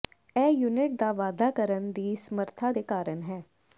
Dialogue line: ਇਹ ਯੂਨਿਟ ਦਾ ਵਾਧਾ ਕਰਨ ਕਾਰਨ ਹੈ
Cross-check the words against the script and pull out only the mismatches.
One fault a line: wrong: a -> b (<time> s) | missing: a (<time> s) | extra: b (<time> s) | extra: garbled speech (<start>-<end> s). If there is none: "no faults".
extra: ਦੀ ਸਮਰੱਥਾ ਦੇ (1.9 s)